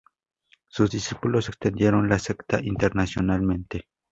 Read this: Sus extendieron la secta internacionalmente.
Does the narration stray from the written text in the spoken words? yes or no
yes